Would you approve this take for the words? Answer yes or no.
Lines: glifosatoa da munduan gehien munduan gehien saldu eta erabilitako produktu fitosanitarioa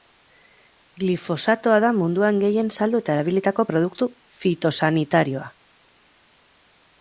no